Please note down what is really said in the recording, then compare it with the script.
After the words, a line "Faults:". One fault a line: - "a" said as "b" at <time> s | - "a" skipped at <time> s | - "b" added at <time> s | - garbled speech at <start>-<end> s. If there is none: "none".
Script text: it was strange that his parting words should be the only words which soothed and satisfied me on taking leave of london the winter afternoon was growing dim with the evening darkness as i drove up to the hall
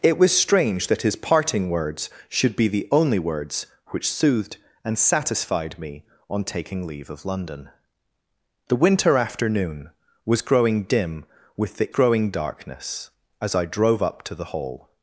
it was strange that his parting words should be the only words which soothed and satisfied me on taking leave of london the winter afternoon was growing dim with the growing darkness as i drove up to the hall
Faults:
- "evening" said as "growing" at 11.9 s